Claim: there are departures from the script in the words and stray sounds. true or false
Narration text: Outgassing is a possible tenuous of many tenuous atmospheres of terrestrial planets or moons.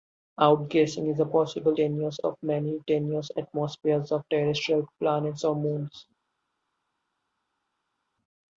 false